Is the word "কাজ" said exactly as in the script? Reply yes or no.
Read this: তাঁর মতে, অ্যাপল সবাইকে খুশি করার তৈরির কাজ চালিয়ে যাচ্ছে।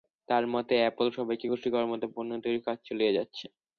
yes